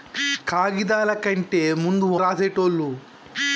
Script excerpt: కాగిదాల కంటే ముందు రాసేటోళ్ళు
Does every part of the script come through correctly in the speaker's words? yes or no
yes